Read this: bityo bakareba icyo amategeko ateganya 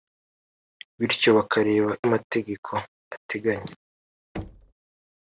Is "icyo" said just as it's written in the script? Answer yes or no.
no